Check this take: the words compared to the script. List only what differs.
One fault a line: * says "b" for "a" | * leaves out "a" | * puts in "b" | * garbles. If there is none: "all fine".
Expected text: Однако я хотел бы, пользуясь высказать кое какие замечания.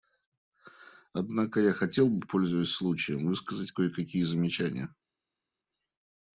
* puts in "случаем"